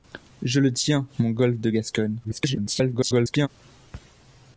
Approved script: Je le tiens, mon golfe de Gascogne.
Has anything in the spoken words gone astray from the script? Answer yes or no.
yes